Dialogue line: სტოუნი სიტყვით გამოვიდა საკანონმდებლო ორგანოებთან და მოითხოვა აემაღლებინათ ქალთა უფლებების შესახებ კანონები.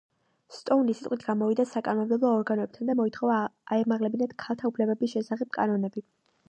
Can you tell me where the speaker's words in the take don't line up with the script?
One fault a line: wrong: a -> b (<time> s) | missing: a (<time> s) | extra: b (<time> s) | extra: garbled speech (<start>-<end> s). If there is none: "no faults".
no faults